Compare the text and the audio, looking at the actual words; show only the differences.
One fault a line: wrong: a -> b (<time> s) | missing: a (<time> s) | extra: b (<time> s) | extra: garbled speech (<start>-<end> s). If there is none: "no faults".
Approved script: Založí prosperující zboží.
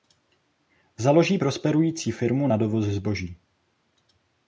extra: firmu na dovoz (2.1 s)